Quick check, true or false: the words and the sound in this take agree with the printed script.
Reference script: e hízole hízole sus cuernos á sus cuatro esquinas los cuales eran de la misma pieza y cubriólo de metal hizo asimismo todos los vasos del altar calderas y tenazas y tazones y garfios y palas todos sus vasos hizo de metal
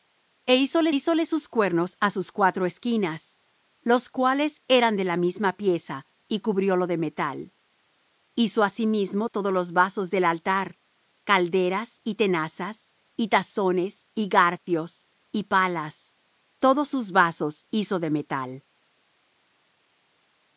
true